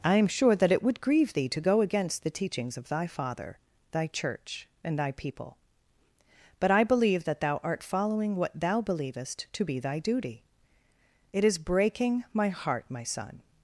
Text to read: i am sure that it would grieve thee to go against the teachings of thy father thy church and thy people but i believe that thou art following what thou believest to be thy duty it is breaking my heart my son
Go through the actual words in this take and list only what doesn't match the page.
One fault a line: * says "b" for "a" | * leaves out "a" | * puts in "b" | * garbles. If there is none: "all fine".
all fine